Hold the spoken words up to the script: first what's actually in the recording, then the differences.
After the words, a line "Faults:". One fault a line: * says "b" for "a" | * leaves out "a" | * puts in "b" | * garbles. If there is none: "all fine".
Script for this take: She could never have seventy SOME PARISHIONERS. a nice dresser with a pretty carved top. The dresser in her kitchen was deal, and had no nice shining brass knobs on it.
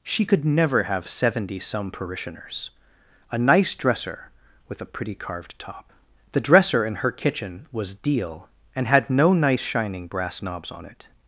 She could never have seventy SOME PARISHIONERS. a nice dresser with a pretty carved top. The dresser in her kitchen was deal, and had no nice shining brass knobs on it.
Faults:
all fine